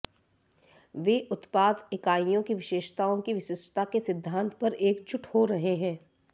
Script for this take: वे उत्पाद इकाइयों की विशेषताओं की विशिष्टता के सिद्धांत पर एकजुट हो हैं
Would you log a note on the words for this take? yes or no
yes